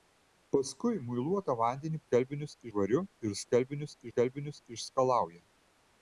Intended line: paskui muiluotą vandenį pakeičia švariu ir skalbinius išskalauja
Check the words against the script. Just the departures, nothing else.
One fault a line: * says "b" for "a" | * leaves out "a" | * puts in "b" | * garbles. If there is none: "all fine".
* says "skalbinius" for "pakeičia"
* puts in "skalbinius"